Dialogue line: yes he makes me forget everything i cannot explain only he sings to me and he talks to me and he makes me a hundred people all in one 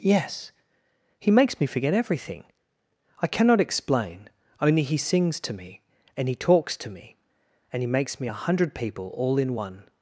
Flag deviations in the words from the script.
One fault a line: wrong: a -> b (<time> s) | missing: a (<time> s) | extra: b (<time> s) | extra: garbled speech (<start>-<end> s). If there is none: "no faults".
no faults